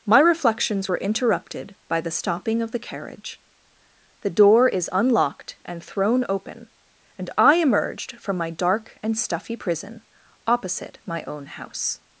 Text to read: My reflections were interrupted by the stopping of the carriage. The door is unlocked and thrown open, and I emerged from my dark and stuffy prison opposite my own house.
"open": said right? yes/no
yes